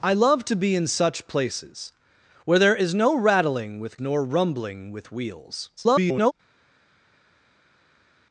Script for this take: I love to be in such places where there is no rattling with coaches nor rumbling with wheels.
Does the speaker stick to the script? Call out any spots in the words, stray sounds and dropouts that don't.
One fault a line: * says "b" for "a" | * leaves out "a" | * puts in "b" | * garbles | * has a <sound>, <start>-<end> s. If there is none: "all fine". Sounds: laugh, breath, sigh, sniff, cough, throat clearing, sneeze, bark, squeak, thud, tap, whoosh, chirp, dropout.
* leaves out "coaches"
* garbles